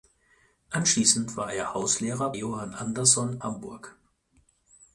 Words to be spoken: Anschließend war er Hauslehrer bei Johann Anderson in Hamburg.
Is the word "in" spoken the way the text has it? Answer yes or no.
no